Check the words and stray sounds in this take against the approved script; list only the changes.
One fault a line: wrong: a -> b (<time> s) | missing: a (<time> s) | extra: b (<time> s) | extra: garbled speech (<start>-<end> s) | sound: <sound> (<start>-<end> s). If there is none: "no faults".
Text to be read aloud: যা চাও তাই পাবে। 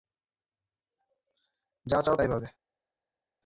no faults